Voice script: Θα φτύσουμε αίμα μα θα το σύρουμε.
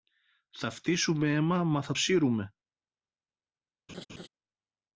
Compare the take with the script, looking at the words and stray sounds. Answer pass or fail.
fail